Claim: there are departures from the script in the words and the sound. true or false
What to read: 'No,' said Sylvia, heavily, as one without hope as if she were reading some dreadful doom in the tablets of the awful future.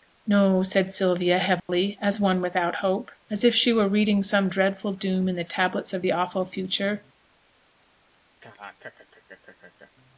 true